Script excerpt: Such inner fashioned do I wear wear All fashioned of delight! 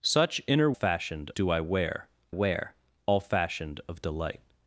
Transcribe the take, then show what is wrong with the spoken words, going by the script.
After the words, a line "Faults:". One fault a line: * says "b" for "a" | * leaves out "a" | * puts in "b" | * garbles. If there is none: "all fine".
Such inner fashioned do I wear wear All fashioned of delight!
Faults:
all fine